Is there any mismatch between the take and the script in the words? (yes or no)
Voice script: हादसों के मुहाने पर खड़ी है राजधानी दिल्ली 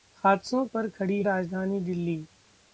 yes